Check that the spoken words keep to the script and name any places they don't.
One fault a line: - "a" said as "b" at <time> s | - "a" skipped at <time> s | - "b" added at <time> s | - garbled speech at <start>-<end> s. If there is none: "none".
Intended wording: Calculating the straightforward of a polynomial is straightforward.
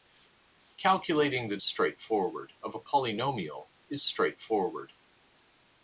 none